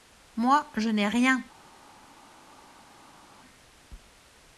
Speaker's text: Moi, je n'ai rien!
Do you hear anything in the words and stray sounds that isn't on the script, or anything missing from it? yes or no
no